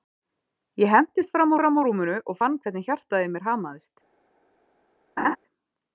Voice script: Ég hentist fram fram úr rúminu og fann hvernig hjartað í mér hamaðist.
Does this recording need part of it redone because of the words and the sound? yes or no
yes